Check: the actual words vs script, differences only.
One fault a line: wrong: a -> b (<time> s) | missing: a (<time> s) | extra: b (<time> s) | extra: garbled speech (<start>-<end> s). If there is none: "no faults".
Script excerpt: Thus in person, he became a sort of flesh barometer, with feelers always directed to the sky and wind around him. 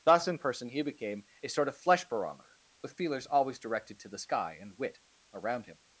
wrong: wind -> wit (4.8 s)